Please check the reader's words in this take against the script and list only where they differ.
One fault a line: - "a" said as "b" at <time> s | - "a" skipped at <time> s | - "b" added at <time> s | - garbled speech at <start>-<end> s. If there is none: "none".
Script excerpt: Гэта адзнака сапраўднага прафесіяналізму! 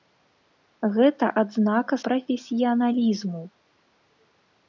- "сапраўднага" skipped at 1.9 s